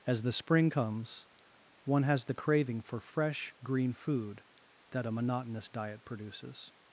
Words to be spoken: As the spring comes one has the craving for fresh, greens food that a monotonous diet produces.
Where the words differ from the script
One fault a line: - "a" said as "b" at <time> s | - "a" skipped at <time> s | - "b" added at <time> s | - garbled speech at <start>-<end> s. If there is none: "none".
- "greens" said as "green" at 3.6 s